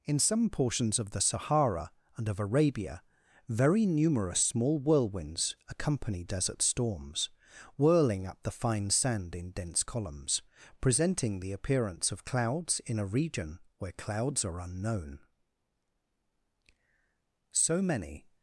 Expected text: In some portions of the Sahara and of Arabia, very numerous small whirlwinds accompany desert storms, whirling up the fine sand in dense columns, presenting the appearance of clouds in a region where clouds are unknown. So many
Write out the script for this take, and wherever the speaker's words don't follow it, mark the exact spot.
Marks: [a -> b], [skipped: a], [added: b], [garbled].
In some portions of the Sahara and of Arabia, very numerous small whirlwinds accompany desert storms, whirling up the fine sand in dense columns, presenting the appearance of clouds in a region where clouds are unknown. So many